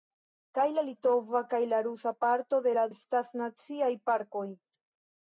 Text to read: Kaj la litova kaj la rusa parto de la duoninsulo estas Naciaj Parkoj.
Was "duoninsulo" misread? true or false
true